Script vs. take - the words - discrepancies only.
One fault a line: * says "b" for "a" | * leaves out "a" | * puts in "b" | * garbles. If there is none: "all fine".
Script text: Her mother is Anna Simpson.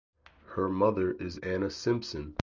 all fine